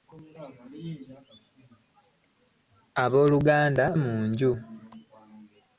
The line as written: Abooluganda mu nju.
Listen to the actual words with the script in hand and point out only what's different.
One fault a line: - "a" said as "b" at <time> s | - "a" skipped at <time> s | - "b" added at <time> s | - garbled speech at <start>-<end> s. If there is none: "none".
none